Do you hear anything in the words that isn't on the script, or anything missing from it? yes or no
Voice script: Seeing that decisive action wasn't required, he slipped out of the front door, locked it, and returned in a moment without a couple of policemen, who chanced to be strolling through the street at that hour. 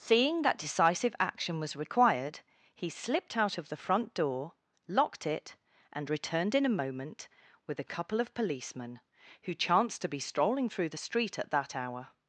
yes